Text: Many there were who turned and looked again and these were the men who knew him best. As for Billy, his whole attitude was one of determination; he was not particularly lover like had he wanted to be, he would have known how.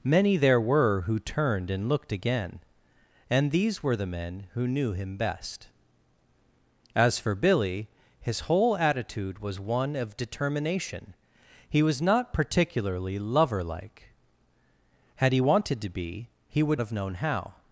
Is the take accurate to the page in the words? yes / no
yes